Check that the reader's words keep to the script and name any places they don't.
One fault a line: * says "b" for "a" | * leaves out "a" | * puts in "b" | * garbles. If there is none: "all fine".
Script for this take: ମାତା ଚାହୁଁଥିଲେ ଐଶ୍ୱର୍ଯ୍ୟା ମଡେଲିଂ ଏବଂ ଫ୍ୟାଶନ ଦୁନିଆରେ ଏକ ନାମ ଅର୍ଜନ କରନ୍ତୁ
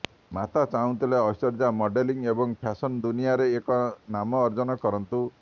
all fine